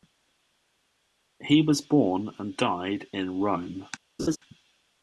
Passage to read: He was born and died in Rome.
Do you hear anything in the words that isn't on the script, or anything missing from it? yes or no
no